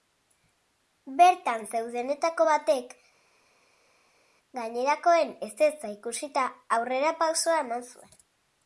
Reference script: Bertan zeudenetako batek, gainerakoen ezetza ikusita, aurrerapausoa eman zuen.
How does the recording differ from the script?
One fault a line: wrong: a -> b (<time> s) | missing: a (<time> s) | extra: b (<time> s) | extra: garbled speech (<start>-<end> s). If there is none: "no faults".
no faults